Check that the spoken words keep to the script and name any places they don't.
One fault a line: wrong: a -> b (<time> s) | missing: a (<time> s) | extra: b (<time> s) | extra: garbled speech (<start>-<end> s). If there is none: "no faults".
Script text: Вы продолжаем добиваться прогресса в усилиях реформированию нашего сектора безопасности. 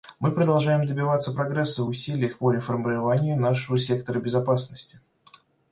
wrong: Вы -> Мы (0.2 s)
extra: по (2.3 s)